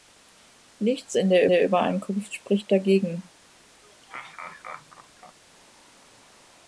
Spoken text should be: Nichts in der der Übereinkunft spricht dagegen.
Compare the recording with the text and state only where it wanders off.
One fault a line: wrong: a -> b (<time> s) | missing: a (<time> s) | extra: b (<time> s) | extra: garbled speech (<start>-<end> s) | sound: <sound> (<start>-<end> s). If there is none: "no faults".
sound: laugh (3.8-5.4 s)